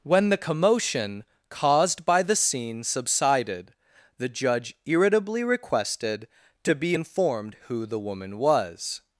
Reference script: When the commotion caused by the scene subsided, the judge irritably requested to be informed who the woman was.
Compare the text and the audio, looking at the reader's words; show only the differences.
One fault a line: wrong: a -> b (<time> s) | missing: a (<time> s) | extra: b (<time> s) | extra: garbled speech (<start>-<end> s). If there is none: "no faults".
no faults